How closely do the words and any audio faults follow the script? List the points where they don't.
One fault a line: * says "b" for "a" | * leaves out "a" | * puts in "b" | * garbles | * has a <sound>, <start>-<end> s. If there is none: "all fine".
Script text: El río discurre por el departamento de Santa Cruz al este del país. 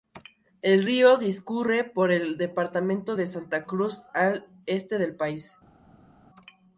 all fine